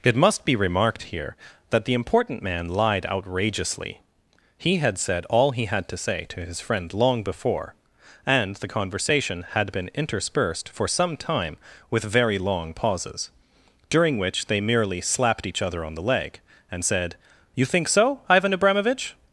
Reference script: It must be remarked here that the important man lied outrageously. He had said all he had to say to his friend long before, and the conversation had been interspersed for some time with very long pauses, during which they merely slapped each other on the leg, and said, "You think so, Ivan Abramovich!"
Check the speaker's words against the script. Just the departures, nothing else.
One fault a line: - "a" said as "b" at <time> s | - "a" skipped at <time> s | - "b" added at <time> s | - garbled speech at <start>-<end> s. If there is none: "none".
none